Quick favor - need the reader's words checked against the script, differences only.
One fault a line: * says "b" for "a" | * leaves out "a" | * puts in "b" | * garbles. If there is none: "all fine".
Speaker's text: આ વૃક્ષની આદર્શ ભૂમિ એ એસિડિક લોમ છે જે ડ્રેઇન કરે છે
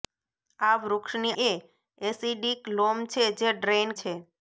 * leaves out "આદર્શ ભૂમિ"
* leaves out "કરે"